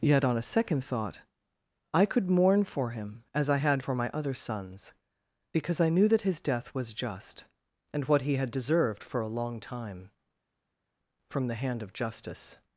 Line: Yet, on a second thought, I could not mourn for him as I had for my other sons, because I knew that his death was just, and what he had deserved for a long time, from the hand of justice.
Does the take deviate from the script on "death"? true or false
false